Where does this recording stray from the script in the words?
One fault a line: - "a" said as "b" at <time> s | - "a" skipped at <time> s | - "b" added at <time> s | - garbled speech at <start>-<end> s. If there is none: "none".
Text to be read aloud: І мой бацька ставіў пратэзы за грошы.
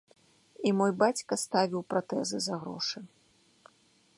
none